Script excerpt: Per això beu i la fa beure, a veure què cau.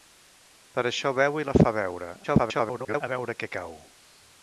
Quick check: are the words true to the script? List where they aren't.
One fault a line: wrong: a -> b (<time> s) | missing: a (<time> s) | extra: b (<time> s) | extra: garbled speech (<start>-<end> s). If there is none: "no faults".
extra: garbled speech (2.2-3.0 s)